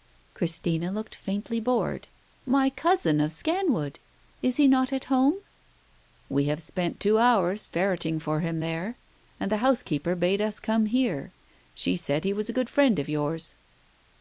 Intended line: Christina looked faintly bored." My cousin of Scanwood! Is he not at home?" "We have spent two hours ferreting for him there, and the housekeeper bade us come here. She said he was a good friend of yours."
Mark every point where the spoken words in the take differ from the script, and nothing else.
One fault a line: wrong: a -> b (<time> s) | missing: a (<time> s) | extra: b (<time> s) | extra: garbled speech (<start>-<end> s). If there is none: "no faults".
no faults